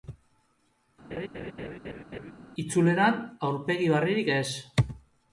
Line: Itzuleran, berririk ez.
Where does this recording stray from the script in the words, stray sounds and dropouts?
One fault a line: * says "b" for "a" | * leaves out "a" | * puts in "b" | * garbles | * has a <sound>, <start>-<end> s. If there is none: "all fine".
* has a laugh, 1.1-2.3 s
* puts in "aurpegi"